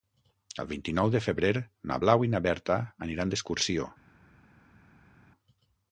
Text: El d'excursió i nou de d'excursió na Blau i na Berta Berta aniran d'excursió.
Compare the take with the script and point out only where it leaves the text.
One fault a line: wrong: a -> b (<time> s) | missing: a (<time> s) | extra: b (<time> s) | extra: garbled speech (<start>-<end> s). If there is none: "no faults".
wrong: d'excursió -> vint (0.7 s)
wrong: d'excursió -> febrer (1.2 s)
missing: Berta (2.8 s)